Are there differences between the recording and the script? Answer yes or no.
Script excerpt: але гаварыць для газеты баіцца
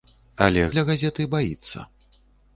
yes